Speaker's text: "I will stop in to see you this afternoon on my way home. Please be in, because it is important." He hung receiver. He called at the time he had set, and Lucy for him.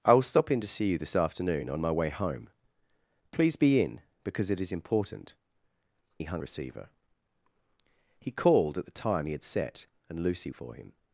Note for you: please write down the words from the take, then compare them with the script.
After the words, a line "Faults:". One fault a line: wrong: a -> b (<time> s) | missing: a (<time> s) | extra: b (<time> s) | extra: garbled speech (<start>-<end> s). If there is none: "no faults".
"I will stop in to see you this afternoon on my way home. Please be in, because it is important." He hung receiver. He called at the time he had set, and Lucy for him.
Faults:
no faults